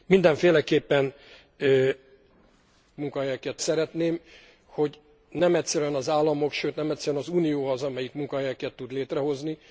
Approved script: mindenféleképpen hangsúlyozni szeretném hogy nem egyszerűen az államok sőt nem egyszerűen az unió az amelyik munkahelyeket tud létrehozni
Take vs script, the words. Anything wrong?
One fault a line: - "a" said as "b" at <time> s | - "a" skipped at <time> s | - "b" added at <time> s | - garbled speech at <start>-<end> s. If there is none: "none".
- "hangsúlyozni" said as "munkahelyeket" at 3.0 s